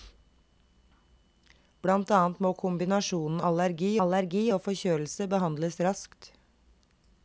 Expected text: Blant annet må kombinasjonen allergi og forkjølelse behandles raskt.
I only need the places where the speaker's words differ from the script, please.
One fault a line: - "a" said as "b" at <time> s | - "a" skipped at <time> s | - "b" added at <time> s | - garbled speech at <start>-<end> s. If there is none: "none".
- "allergi" added at 4.0 s